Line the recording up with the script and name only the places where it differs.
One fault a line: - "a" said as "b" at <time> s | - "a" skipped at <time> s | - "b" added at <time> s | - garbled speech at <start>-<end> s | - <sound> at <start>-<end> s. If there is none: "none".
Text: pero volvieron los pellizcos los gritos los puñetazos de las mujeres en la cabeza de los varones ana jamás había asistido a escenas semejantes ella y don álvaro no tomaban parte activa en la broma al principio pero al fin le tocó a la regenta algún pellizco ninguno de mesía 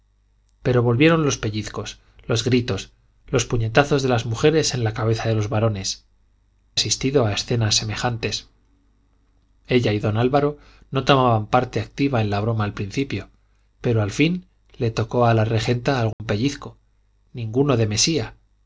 - "ana jamás había" skipped at 6.0 s
- dropout at 16.1-16.2 s